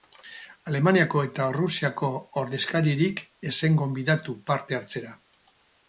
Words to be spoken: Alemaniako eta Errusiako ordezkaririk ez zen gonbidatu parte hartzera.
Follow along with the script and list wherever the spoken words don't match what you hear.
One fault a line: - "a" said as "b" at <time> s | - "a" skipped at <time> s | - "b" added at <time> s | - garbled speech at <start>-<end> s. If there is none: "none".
none